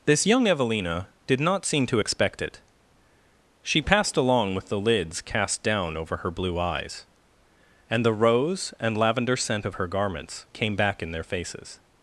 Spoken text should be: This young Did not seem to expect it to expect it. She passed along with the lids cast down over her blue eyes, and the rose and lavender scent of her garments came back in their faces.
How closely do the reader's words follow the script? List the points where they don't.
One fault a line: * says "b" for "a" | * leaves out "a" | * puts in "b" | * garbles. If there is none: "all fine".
* puts in "Evelina"
* leaves out "to expect it"